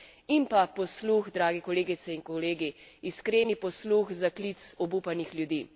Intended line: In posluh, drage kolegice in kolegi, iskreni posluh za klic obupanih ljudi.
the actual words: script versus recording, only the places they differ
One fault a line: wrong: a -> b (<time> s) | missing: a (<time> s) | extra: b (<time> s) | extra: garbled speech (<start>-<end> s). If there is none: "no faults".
extra: pa (0.5 s)